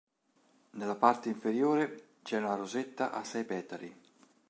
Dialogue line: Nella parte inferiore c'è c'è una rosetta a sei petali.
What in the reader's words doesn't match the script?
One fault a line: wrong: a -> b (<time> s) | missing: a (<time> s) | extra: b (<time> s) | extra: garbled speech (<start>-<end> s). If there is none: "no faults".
missing: c'è (2.4 s)